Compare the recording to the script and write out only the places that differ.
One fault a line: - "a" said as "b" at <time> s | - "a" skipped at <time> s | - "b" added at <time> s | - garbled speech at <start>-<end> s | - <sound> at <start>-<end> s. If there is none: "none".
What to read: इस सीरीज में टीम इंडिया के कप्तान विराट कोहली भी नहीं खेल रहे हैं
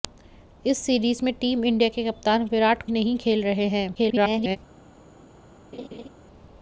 - "कोहली भी" skipped at 2.8 s
- garbled speech at 3.9-4.6 s
- laugh at 5.7-6.1 s